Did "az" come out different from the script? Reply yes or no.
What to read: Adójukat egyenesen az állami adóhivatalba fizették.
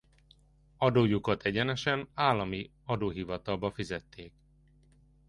yes